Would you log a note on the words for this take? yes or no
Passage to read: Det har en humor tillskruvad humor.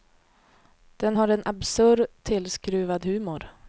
yes